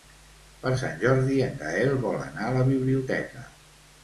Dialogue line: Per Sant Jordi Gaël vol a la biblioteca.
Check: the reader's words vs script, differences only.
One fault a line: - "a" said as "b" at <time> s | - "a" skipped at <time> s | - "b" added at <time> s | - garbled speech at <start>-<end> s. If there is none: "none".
- "en" added at 1.5 s
- "anar" added at 2.3 s